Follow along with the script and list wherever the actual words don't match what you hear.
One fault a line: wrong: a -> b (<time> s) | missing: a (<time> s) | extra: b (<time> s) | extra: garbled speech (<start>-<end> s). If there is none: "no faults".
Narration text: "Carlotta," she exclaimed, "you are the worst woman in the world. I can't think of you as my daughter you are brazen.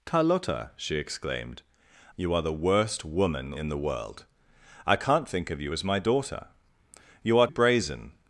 no faults